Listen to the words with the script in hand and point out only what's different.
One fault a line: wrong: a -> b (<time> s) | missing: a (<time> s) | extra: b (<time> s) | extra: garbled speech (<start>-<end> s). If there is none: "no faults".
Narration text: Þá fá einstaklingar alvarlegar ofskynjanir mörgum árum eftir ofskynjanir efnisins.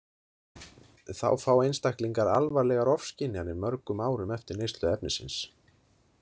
wrong: ofskynjanir -> neyslu (4.6 s)